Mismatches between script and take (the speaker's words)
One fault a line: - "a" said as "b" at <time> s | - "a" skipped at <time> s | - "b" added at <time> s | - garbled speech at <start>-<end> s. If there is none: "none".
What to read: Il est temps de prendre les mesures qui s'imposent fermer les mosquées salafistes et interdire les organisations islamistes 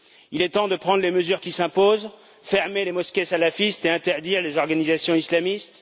none